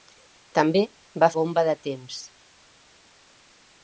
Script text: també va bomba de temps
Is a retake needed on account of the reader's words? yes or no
no